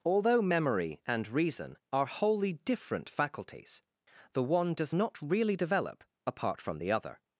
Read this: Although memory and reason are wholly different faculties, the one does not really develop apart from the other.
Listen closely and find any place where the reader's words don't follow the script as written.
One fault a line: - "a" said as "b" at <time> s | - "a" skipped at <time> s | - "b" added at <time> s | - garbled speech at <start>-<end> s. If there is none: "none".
none